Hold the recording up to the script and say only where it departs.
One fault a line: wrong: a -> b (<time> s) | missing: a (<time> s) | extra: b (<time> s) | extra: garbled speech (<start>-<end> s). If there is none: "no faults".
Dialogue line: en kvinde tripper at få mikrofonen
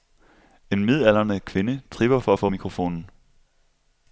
extra: midaldrende (0.8 s)
extra: for (2.2 s)